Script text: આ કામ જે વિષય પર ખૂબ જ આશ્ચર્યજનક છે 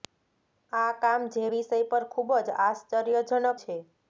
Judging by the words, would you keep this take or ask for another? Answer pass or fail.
pass